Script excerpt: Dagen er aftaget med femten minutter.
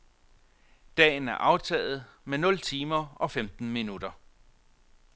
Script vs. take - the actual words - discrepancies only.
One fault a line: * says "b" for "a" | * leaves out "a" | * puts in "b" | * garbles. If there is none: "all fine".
* puts in "nul timer og"